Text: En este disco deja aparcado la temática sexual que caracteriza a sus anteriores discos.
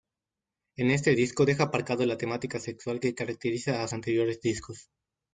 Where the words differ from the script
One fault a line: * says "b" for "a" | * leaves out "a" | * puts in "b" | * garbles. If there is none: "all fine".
* leaves out "sus"